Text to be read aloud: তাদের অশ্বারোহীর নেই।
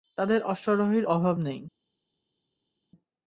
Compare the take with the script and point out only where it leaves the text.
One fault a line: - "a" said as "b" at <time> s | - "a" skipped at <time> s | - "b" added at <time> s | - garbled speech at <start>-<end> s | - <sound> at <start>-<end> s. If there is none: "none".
- "অভাব" added at 1.1 s